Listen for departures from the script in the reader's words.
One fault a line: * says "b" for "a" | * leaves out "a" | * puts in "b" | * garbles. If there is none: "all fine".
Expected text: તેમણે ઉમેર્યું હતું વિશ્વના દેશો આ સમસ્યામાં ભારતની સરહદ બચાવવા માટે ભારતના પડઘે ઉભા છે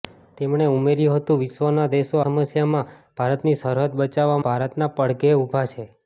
* leaves out "આ"
* leaves out "માટે"